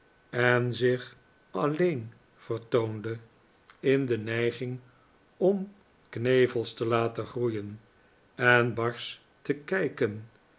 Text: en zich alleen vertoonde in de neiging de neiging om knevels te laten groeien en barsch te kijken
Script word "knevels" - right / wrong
right